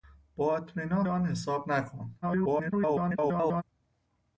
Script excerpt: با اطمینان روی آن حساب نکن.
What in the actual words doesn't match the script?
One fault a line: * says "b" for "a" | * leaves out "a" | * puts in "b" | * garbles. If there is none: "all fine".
* leaves out "روی"
* garbles